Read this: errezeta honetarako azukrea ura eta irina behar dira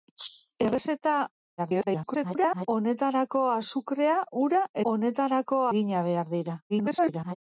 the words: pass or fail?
fail